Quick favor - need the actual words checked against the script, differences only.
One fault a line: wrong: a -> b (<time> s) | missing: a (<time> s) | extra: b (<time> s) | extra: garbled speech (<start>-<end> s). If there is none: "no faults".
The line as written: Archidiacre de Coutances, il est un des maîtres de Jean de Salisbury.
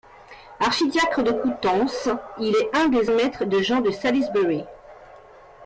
no faults